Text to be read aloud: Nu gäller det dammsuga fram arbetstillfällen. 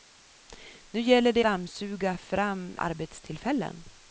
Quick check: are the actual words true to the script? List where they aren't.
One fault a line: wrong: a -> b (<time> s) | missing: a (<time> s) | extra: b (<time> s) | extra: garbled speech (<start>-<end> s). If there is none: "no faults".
no faults